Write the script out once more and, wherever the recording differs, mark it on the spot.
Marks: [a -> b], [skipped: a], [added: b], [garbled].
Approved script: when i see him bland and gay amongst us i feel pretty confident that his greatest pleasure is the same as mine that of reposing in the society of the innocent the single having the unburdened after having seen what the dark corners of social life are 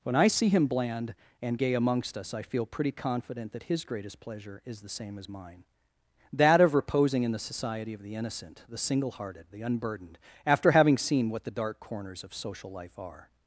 when i see him bland and gay amongst us i feel pretty confident that his greatest pleasure is the same as mine that of reposing in the society of the innocent the single [having -> hearted] the unburdened after having seen what the dark corners of social life are